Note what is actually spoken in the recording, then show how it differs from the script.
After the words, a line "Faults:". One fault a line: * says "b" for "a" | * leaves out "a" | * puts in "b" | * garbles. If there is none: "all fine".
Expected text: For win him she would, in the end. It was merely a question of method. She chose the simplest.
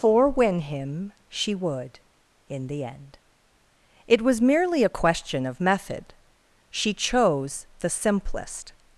For win him she would, in the end. It was merely a question of method. She chose the simplest.
Faults:
all fine